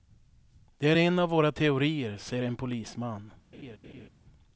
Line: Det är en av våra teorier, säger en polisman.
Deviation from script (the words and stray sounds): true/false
true